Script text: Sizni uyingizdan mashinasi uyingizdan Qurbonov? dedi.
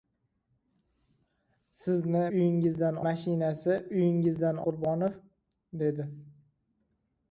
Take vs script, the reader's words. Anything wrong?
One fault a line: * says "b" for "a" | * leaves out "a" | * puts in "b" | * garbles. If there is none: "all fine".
all fine